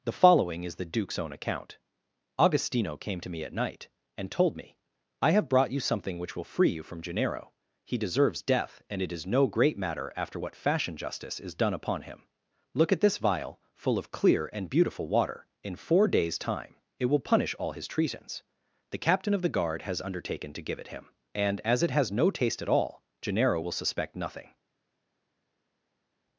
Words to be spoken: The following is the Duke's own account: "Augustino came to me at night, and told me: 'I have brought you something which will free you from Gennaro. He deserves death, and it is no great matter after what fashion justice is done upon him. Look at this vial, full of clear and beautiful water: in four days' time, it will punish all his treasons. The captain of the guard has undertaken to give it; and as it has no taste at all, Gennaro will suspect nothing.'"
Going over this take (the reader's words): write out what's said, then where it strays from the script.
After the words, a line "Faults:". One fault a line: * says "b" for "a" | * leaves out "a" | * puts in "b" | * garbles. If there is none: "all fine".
The following is the Duke's own account: "Augustino came to me at night, and told me: 'I have brought you something which will free you from Gennaro. He deserves death, and it is no great matter after what fashion justice is done upon him. Look at this vial, full of clear and beautiful water: in four days' time, it will punish all his treasons. The captain of the guard has undertaken to give it him; and as it has no taste at all, Gennaro will suspect nothing.'"
Faults:
* puts in "him"